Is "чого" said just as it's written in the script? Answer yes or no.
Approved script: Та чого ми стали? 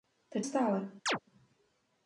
no